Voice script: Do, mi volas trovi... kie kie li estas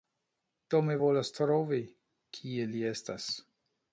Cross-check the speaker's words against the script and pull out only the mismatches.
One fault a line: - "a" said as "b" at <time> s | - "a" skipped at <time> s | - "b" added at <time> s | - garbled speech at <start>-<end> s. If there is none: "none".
- "kie" skipped at 2.7 s